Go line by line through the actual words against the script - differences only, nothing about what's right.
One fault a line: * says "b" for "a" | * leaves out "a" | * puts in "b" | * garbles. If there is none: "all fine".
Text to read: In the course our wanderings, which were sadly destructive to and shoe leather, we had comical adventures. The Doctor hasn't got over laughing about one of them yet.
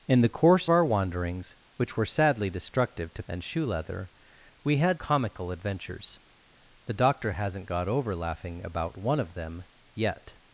all fine